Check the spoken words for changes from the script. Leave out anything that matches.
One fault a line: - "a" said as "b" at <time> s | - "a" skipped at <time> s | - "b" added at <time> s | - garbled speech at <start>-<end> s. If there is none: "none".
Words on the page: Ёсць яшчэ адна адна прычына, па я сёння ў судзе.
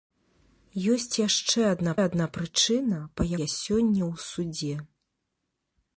none